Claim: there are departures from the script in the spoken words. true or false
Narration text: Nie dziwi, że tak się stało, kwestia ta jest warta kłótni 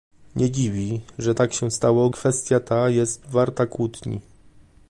false